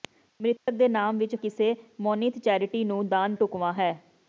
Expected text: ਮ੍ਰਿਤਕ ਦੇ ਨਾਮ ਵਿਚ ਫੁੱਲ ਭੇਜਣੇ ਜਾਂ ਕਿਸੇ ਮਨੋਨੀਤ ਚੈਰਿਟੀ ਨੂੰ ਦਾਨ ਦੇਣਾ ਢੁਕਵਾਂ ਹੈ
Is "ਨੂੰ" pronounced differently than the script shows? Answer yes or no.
no